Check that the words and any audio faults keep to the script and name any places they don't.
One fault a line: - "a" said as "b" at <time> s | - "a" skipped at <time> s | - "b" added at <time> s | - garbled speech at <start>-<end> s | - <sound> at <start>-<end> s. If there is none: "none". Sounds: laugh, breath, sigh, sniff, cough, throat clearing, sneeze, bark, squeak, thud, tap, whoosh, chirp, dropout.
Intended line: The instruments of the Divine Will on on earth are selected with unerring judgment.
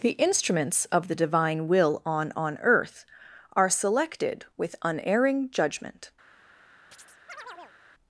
- chirp at 6.9-7.8 s